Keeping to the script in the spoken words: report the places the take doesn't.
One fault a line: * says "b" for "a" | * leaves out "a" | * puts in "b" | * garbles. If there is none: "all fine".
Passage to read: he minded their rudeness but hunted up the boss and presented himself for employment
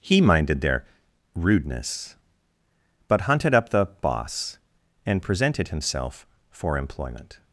all fine